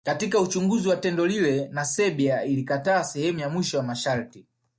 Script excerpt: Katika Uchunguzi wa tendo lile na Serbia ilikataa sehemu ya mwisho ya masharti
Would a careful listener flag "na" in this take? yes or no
no